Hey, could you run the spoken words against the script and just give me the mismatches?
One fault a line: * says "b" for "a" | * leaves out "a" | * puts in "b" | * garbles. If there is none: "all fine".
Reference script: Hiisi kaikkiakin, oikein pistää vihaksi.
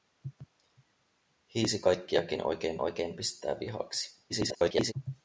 * puts in "oikein"
* garbles